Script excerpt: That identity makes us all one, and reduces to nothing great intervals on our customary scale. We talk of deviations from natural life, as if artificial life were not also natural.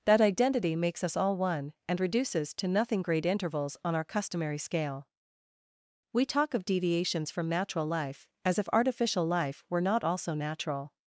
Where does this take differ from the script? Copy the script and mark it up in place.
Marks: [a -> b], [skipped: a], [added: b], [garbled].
That identity makes us all one, and reduces to nothing great intervals on our customary scale. We talk of deviations from natural life, as if artificial life were not also natural.